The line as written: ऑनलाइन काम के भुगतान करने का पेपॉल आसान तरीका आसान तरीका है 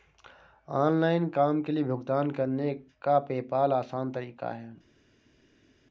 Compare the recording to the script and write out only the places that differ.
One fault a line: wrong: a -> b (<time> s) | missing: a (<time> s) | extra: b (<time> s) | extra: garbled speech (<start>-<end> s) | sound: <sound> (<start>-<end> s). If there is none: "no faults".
extra: लिए (1.7 s)
missing: आसान तरीका (4.5 s)